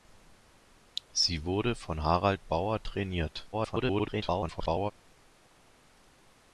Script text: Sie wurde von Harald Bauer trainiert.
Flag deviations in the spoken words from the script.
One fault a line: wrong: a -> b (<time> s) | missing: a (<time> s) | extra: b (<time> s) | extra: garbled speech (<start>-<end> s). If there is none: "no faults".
extra: garbled speech (3.5-4.9 s)